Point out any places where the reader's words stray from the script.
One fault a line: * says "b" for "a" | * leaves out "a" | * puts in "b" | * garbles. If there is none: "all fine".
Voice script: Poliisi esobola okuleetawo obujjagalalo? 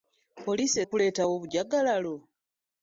* leaves out "esobola"